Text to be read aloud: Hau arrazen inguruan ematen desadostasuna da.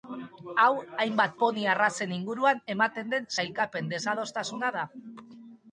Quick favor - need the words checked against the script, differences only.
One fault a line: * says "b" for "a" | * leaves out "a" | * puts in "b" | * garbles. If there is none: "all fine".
* puts in "hainbat poni"
* puts in "den sailkapen"